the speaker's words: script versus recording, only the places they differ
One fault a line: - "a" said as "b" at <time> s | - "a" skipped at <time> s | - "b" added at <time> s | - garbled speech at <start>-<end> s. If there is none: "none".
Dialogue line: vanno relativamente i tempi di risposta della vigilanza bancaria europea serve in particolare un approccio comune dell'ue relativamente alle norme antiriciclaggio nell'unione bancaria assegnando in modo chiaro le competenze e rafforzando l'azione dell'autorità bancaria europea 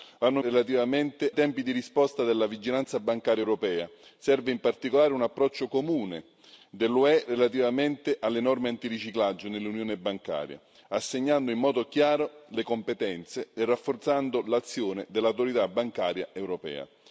none